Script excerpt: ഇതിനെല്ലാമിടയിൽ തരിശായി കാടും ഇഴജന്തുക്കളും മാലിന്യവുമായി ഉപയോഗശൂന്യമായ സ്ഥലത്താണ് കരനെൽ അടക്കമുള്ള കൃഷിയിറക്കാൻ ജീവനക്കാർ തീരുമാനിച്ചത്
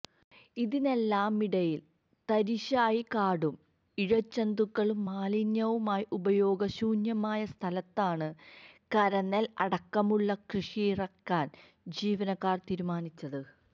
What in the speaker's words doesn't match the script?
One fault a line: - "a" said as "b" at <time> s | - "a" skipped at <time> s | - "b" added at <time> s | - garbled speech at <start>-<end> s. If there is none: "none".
none